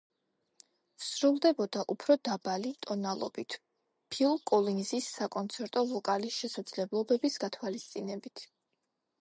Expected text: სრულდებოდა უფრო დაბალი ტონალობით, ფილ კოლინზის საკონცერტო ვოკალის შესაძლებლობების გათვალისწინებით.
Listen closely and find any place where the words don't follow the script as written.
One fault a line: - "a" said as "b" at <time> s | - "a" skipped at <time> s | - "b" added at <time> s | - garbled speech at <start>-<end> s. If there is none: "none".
none